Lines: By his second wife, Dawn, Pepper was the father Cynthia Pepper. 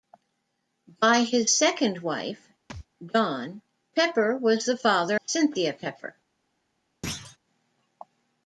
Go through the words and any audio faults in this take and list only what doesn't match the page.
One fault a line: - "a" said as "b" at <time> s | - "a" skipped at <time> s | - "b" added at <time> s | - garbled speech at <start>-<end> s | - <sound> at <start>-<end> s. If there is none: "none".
- thud at 2.7-2.9 s
- thud at 7.0-7.4 s